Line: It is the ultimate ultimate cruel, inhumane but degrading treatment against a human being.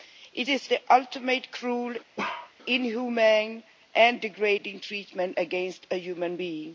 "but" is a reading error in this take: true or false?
true